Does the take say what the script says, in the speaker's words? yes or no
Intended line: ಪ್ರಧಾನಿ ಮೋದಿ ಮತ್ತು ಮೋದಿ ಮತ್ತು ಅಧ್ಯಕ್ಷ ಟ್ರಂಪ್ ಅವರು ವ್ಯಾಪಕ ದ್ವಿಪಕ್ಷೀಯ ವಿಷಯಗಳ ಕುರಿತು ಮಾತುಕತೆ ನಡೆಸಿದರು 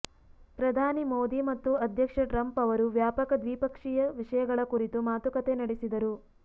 no